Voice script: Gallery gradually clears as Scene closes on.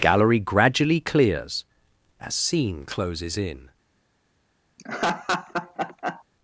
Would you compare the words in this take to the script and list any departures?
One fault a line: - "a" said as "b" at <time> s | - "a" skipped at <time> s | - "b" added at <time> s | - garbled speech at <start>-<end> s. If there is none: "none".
- "on" said as "in" at 3.4 s